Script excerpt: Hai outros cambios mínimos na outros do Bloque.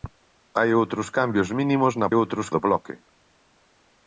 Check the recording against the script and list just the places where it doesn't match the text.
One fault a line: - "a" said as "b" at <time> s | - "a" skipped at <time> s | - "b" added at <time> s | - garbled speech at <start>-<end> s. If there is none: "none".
none